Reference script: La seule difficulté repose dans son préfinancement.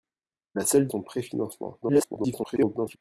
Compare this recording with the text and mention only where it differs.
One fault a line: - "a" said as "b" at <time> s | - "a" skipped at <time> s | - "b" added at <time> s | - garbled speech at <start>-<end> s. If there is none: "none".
- "difficulté repose dans" skipped at 0.9 s
- garbled speech at 1.8-3.0 s